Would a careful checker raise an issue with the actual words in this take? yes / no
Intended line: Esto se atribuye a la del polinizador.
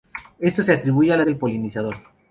no